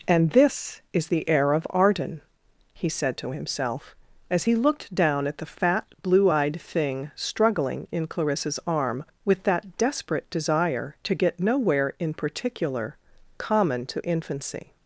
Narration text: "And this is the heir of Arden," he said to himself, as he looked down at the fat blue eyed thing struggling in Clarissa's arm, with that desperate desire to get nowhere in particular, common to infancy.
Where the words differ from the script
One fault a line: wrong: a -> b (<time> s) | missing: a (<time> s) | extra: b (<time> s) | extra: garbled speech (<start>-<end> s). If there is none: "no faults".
no faults